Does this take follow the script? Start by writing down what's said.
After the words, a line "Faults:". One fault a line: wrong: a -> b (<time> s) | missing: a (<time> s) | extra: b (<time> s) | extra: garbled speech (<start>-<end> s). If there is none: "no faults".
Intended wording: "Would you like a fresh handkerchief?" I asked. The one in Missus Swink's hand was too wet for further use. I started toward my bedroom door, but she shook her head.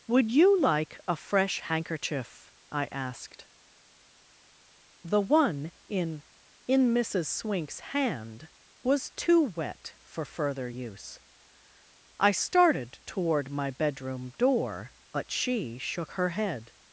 "Would you like a fresh handkerchief?" I asked. The one in in Missus Swink's hand was too wet for further use. I started toward my bedroom door, but she shook her head.
Faults:
extra: in (6.7 s)